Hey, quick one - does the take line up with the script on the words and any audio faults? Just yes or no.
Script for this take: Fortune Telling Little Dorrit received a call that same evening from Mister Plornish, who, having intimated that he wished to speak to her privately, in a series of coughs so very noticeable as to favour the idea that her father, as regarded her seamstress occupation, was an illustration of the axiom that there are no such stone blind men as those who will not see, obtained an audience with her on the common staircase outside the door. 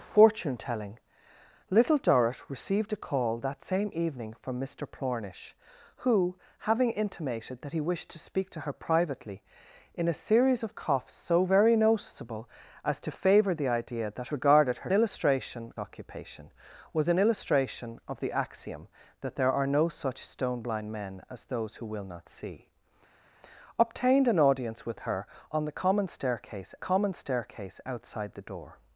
no